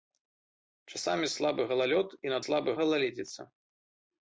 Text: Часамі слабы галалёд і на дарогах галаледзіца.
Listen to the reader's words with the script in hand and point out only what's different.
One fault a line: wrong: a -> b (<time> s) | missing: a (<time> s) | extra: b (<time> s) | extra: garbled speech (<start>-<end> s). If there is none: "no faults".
wrong: дарогах -> слабы (2.4 s)